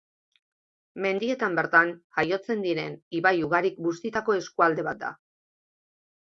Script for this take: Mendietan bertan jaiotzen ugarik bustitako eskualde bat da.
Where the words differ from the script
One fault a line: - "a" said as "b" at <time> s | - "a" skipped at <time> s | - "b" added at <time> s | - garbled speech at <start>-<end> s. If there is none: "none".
- "diren ibai" added at 2.7 s